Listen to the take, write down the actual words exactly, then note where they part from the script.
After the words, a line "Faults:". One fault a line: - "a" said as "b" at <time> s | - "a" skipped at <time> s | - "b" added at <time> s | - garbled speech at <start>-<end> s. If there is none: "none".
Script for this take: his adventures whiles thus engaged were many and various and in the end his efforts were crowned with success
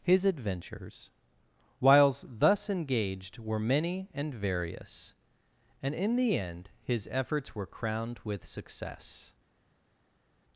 his adventures whiles thus engaged were many and various and in the end his efforts were crowned with success
Faults:
none